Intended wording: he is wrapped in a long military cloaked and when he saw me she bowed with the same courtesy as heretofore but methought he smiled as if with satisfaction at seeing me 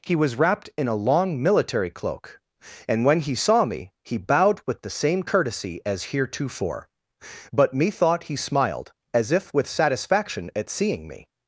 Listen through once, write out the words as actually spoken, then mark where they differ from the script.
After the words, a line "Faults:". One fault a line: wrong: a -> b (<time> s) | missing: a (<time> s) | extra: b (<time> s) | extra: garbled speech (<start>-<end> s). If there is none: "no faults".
he was wrapped in a long military cloak and when he saw me he bowed with the same courtesy as heretofore but methought he smiled as if with satisfaction at seeing me
Faults:
wrong: is -> was (0.1 s)
wrong: cloaked -> cloak (1.9 s)
wrong: she -> he (4.0 s)